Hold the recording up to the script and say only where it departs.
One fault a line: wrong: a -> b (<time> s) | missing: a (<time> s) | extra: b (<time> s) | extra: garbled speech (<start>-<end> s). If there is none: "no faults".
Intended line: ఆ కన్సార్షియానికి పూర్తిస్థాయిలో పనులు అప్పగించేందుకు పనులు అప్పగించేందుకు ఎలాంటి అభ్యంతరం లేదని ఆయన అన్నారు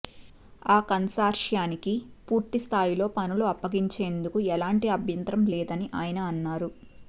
missing: పనులు అప్పగించేందుకు (4.4 s)